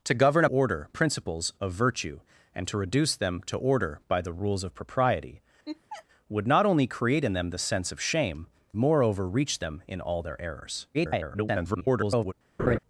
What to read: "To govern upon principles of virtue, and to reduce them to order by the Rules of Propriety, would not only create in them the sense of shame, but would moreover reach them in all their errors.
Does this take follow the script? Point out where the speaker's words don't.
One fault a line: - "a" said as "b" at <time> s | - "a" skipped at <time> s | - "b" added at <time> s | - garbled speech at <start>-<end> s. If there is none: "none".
- "upon" said as "order" at 0.5 s
- "but would" skipped at 8.5 s
- garbled speech at 10.9-12.3 s